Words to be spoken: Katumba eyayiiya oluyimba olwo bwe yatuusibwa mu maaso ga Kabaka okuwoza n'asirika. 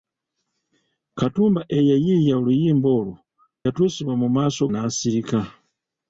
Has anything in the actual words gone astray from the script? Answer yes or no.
yes